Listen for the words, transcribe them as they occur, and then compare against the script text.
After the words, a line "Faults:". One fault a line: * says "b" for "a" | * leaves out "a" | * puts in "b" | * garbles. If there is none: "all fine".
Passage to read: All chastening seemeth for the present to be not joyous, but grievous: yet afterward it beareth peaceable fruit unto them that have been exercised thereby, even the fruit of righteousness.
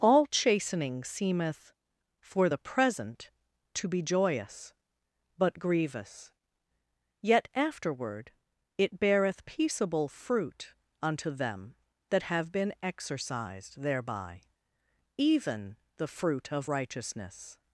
All chastening seemeth for the present to be joyous, but grievous: yet afterward it beareth peaceable fruit unto them that have been exercised thereby, even the fruit of righteousness.
Faults:
* leaves out "not"